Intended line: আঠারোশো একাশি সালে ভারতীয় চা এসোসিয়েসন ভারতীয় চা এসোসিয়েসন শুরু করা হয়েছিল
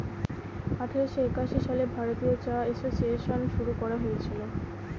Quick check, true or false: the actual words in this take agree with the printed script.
false